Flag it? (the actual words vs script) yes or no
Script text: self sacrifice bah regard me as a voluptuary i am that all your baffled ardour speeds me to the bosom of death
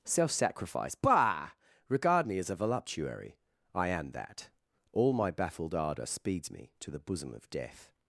yes